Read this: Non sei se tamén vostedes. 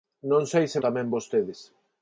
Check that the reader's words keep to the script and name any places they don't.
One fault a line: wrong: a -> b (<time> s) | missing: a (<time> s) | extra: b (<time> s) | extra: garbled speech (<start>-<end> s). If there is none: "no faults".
no faults